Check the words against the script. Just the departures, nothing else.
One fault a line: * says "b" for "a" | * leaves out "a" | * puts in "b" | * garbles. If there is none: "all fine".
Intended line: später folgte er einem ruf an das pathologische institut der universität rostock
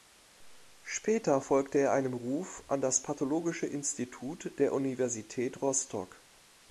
all fine